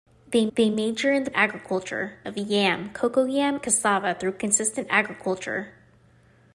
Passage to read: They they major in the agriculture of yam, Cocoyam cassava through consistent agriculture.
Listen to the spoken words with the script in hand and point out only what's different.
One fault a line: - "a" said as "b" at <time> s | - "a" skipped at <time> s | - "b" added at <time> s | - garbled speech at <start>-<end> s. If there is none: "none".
none